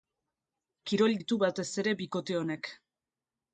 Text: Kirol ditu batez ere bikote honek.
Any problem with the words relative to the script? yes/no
no